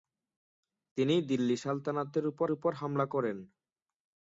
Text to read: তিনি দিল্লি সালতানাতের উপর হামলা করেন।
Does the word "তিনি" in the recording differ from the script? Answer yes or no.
no